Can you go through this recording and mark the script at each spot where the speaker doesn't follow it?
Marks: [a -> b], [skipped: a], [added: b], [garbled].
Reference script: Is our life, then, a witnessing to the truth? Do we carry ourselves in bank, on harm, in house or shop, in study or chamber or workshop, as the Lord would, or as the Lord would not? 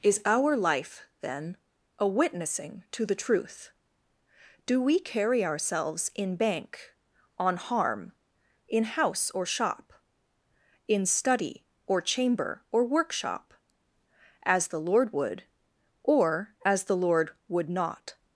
Is our life, then, a witnessing to the truth? Do we carry ourselves in bank, on harm, in house or shop, in study or chamber or workshop, as the Lord would, or as the Lord would not?